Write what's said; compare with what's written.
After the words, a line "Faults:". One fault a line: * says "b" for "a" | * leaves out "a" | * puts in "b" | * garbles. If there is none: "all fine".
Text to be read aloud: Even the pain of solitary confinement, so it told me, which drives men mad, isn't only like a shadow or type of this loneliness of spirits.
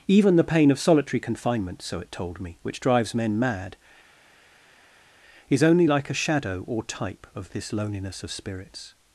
Even the pain of solitary confinement, so it told me, which drives men mad, is only like a shadow or type of this loneliness of spirits.
Faults:
* says "is" for "isn't"